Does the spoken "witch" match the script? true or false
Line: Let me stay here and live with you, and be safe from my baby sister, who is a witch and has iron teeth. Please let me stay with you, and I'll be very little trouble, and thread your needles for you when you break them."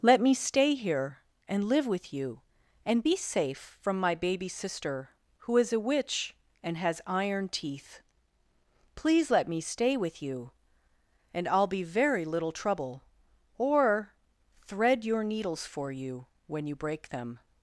true